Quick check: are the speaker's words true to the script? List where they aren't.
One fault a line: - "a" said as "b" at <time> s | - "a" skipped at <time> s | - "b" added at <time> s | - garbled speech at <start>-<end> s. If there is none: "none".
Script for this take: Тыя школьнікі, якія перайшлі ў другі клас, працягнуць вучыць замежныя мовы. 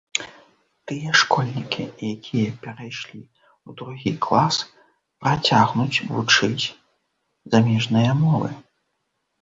none